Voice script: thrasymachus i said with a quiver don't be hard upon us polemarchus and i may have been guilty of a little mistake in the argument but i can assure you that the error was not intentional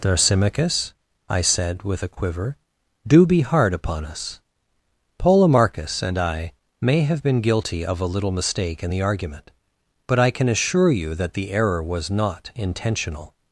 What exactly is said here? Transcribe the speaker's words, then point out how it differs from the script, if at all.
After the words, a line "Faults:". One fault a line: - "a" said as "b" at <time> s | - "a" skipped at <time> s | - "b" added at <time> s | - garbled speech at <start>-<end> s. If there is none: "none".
thrasymachus i said with a quiver do be hard upon us polemarchus and i may have been guilty of a little mistake in the argument but i can assure you that the error was not intentional
Faults:
- "don't" said as "do" at 3.0 s